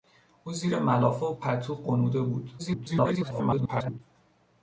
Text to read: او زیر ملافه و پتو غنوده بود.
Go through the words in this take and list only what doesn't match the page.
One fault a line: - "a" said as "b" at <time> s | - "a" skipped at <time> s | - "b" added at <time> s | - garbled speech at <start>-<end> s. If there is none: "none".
- garbled speech at 2.6-4.0 s